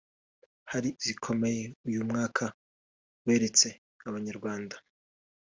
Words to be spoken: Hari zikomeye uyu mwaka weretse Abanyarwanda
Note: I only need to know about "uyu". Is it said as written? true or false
true